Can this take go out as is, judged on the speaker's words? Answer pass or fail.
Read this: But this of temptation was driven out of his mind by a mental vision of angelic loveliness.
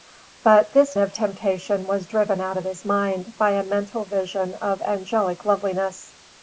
pass